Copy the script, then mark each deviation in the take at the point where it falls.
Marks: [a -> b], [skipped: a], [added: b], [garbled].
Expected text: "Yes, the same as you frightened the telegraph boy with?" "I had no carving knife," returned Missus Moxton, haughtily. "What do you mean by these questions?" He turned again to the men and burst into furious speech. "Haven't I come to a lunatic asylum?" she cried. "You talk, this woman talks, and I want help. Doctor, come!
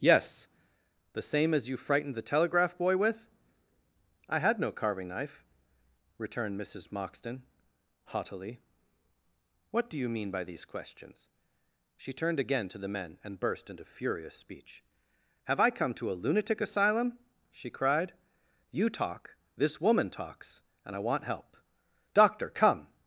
"Yes, the same as you frightened the telegraph boy with?" "I had no carving knife," returned Missus Moxton, haughtily. "What do you mean by these questions?" [He -> She] turned again to the men and burst into furious speech. ["Haven't -> Have] I come to a lunatic asylum?" she cried. "You talk, this woman talks, and I want help. Doctor, come!